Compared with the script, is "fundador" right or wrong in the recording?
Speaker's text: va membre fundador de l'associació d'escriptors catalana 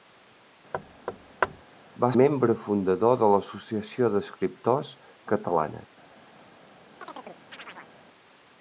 right